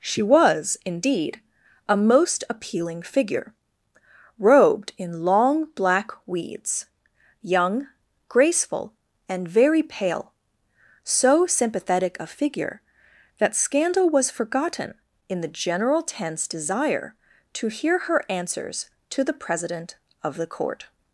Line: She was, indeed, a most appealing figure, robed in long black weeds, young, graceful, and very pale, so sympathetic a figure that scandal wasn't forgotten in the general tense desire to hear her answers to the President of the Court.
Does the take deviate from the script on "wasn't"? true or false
true